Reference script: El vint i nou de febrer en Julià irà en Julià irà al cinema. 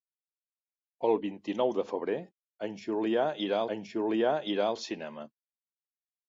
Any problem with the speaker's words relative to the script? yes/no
no